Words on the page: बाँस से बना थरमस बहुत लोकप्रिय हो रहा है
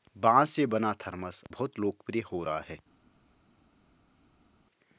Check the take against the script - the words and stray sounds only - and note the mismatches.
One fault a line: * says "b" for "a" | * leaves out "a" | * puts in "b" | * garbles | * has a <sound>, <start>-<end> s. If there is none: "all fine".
all fine